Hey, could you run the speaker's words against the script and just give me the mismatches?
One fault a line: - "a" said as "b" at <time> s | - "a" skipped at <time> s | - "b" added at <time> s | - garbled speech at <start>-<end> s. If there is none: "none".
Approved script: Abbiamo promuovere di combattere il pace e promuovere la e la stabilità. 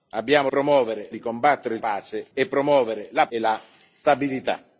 none